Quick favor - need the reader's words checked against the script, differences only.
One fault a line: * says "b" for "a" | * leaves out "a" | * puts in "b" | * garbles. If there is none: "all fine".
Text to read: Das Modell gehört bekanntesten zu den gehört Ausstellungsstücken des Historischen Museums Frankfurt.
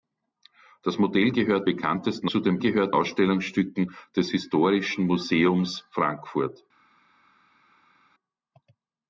all fine